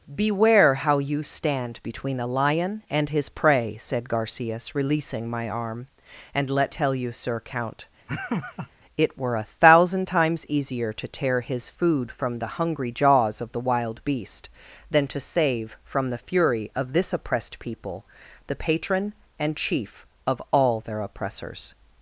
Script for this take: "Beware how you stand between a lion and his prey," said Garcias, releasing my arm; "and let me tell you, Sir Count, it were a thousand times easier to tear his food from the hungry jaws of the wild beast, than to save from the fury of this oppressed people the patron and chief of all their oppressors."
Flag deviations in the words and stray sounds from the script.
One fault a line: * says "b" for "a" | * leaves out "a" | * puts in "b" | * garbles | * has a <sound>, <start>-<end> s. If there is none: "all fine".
* leaves out "me"
* has a laugh, 8.1-8.7 s